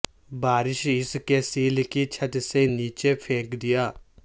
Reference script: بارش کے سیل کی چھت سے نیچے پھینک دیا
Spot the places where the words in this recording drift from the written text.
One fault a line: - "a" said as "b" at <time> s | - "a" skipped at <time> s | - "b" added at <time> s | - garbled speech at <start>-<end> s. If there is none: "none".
- "اس" added at 0.9 s